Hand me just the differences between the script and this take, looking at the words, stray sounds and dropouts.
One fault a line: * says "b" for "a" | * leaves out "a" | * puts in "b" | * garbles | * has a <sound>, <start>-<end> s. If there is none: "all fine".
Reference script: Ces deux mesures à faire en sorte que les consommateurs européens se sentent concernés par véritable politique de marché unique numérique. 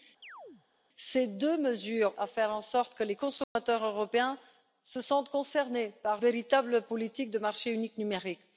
* has a chirp, 0.2-0.6 s
* has a dropout, 3.4-3.6 s